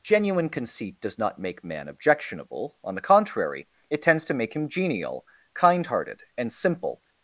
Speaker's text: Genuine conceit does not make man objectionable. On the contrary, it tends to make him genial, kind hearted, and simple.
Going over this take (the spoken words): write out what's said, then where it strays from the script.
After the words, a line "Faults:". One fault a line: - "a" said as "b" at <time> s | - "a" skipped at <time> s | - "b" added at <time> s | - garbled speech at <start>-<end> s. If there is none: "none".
Genuine conceit does not make man objectionable. On the contrary, it tends to make him genial, kind hearted, and simple.
Faults:
none